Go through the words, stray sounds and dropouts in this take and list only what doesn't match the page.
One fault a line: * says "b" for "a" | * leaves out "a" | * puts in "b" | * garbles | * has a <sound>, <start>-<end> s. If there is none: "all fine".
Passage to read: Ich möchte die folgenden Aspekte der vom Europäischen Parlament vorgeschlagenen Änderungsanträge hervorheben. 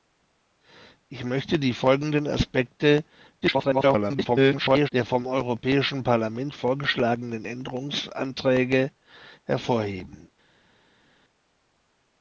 * garbles